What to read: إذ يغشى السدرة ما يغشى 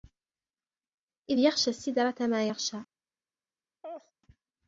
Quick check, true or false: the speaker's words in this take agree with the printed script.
true